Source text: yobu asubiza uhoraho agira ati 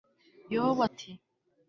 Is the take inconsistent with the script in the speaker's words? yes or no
yes